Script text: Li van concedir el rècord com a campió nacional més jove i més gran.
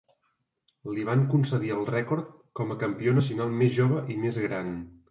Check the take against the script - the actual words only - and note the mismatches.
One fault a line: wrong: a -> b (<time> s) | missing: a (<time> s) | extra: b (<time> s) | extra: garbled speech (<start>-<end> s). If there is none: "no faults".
no faults